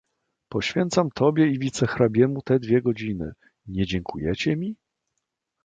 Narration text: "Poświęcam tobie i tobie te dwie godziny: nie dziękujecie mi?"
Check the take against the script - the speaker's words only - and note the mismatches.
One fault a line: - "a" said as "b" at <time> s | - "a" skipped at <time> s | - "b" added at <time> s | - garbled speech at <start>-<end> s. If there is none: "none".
- "tobie" said as "wicehrabiemu" at 1.6 s